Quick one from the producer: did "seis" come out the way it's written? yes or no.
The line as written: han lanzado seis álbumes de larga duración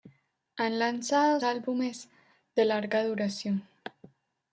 no